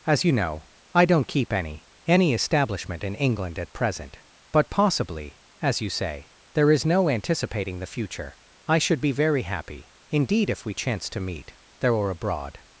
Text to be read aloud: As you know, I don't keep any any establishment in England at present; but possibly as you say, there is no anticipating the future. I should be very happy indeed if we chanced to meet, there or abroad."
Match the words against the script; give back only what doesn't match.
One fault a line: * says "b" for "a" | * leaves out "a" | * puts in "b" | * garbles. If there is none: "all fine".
all fine